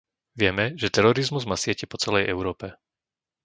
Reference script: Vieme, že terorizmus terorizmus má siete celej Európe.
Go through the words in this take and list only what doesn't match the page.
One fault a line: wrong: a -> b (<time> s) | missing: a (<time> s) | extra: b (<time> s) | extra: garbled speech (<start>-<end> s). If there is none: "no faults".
missing: terorizmus (1.4 s)
extra: po (1.9 s)